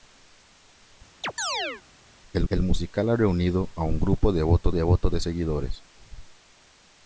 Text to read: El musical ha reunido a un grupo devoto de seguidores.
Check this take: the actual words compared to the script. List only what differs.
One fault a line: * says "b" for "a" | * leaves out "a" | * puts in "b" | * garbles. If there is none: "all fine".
* puts in "el"
* puts in "devoto"